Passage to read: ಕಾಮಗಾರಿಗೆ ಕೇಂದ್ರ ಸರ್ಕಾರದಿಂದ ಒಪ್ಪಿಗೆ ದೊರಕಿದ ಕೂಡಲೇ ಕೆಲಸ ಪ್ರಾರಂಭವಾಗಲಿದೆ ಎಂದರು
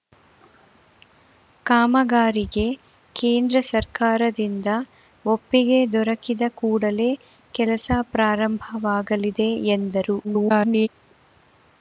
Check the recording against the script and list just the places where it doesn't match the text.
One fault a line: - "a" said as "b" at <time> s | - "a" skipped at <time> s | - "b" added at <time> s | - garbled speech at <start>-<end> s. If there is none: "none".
- garbled speech at 10.2-10.9 s